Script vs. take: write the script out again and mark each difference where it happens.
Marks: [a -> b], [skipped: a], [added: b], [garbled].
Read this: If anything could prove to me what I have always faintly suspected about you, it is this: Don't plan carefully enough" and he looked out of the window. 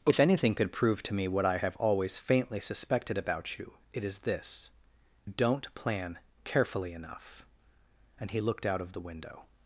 If anything could prove to me what I have always faintly suspected about you, it is this: Don't plan carefully enough" and he looked out of the window.